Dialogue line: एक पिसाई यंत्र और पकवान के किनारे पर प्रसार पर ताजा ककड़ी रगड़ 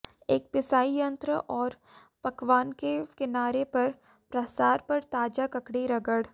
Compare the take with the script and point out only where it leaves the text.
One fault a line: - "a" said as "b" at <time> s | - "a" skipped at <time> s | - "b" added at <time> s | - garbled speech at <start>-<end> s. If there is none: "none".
none